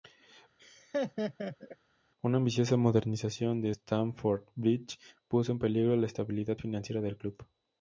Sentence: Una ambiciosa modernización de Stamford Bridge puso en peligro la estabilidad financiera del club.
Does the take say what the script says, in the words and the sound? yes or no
no